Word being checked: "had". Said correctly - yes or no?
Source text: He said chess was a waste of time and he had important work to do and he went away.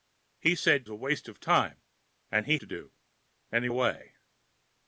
no